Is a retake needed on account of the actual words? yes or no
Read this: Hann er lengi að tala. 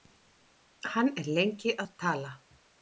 no